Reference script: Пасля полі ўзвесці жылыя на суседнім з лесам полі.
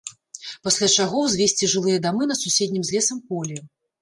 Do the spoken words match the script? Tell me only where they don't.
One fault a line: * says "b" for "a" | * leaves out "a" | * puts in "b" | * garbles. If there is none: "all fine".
* says "чаго" for "полі"
* puts in "дамы"